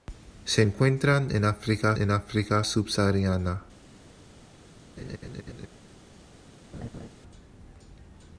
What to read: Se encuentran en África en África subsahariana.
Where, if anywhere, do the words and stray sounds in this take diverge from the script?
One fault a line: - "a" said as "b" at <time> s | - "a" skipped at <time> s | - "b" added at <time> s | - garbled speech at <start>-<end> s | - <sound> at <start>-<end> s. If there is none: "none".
- laugh at 5.0-5.7 s
- laugh at 6.7-7.1 s